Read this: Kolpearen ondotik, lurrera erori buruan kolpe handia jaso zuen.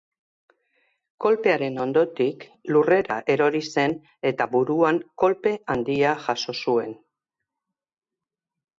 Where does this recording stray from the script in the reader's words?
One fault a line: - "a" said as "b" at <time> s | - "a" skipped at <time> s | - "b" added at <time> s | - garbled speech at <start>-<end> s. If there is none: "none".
- "zen eta" added at 3.7 s